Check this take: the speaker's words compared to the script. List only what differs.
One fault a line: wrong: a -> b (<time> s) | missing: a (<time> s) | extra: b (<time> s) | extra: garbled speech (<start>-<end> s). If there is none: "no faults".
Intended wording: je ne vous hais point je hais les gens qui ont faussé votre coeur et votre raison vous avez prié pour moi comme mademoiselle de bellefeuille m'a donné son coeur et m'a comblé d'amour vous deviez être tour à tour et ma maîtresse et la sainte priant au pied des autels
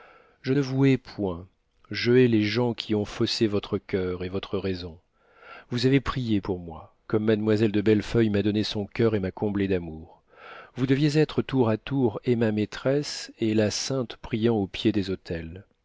no faults